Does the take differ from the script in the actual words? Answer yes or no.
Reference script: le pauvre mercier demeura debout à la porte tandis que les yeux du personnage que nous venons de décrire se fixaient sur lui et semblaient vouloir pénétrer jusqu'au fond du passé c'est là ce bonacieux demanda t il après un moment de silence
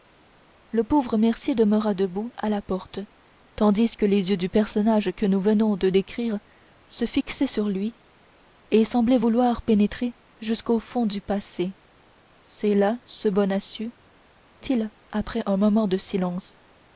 yes